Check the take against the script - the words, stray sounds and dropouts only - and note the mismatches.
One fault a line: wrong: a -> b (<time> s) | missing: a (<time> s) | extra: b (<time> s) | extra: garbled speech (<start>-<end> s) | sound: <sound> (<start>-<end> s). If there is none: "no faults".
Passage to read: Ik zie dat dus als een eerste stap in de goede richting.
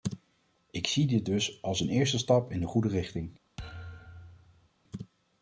wrong: dat -> dit (1.1 s)
sound: thud (3.6-4.7 s)